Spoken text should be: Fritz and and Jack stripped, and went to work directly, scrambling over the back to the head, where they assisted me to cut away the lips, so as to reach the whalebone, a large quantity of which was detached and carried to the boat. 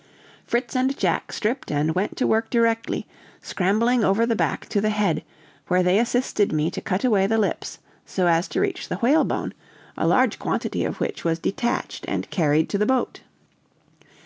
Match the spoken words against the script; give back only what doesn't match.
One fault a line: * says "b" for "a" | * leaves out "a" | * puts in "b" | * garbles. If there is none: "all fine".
* leaves out "and"